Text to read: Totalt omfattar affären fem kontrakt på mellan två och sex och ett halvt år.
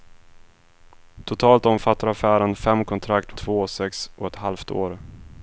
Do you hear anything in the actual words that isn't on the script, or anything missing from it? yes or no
yes